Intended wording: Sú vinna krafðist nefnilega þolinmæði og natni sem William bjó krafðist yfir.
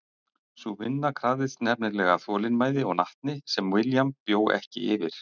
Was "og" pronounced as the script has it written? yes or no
yes